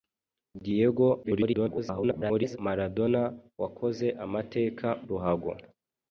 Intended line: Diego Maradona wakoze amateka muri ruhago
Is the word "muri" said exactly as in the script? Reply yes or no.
no